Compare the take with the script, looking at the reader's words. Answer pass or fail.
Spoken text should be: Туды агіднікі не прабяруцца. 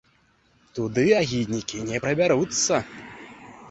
pass